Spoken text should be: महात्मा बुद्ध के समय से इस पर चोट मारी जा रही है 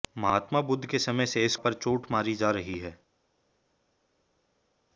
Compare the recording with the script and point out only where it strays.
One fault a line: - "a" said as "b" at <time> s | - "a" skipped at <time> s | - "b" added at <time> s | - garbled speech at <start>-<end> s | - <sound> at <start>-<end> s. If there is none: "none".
none